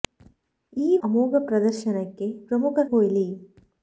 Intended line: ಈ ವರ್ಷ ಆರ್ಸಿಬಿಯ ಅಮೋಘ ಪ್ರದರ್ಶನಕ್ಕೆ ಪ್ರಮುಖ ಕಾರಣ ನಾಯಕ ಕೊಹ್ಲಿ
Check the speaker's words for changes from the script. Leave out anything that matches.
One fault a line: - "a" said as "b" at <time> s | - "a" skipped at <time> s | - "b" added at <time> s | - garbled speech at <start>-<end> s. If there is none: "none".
- "ವರ್ಷ ಆರ್ಸಿಬಿಯ" skipped at 1.0 s
- "ಕಾರಣ ನಾಯಕ" skipped at 2.8 s